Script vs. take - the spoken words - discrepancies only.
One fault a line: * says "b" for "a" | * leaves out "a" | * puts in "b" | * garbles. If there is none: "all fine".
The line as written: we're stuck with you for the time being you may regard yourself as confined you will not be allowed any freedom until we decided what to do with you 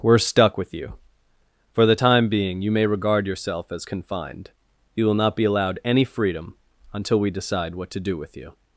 * says "decide" for "decided"